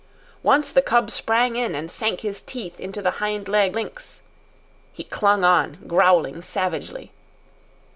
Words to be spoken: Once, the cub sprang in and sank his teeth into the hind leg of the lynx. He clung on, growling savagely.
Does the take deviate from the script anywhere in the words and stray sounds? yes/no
yes